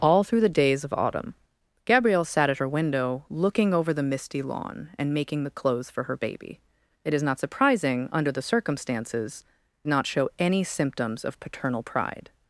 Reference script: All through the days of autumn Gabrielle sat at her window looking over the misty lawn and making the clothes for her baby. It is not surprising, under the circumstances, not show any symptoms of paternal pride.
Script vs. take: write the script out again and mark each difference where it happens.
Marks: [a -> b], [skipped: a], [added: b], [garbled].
All through the days of autumn Gabrielle sat at her window looking over the misty lawn and making the clothes for her baby. It is not surprising, under the circumstances, not show any symptoms of paternal pride.